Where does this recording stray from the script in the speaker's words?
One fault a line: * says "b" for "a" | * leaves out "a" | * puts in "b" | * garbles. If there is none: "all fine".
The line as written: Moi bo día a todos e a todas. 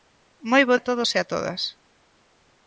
* leaves out "día"